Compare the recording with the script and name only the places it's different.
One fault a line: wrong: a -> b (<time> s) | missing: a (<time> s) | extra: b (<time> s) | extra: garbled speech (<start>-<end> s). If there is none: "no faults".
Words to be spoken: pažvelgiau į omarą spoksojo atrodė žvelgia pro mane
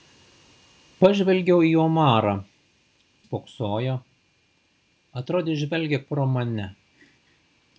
no faults